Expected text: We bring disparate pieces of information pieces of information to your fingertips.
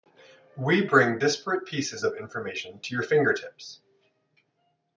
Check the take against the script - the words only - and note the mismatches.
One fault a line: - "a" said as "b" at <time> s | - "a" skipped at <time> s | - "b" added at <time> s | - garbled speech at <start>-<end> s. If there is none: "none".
- "pieces of information" skipped at 2.8 s